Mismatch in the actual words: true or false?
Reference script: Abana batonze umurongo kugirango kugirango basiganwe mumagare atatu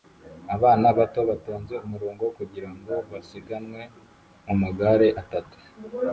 true